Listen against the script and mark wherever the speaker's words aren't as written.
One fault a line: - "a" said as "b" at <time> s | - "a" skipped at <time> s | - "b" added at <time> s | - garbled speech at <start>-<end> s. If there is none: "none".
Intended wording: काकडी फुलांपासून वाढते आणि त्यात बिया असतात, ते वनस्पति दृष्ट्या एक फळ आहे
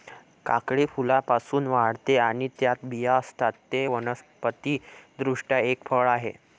none